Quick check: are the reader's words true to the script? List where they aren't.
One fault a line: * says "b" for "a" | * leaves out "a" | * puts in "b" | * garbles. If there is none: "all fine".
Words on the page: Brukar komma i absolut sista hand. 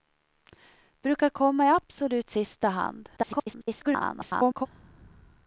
* garbles